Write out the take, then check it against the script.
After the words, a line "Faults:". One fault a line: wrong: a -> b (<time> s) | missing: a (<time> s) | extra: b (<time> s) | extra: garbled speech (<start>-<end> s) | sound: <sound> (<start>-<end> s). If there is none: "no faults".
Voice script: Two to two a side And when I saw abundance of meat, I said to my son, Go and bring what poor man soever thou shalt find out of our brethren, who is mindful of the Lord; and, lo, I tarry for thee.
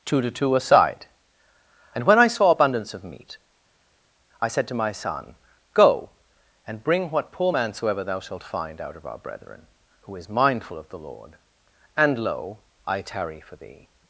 Two to two a side And when I saw abundance of meat, I said to my son, Go and bring what poor man soever thou shalt find out of our brethren, who is mindful of the Lord; and, lo, I tarry for thee.
Faults:
no faults